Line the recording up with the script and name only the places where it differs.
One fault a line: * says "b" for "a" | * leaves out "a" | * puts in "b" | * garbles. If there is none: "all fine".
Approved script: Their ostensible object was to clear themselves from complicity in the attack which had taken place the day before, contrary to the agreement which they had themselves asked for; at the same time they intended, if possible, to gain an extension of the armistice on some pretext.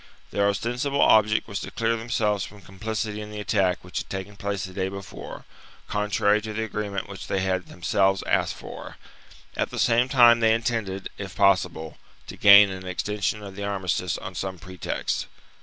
all fine